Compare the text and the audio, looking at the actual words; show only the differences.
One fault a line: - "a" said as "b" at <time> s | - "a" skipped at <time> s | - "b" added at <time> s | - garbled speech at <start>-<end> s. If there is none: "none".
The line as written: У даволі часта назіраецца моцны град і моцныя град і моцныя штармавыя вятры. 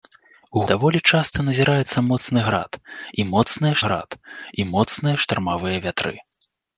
none